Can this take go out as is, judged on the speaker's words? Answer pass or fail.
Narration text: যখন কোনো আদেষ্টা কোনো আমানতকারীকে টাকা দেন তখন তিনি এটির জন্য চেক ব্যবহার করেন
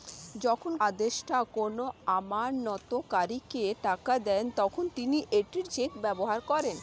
fail